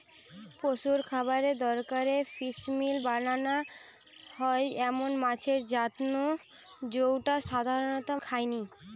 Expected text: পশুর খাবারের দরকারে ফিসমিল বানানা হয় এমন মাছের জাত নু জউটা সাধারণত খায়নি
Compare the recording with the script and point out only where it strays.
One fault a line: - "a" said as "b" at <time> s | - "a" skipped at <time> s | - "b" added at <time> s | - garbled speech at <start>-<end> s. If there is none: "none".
none